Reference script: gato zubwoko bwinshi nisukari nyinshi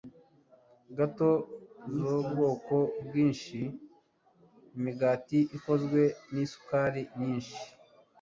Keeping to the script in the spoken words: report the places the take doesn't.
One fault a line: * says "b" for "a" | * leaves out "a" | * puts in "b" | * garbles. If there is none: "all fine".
* puts in "imigati ikozwe"